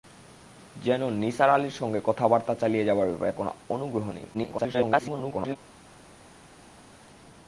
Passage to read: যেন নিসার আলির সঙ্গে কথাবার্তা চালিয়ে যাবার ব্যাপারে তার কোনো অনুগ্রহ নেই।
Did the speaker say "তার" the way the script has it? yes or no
no